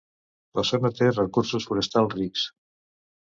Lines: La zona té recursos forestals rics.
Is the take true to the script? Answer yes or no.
yes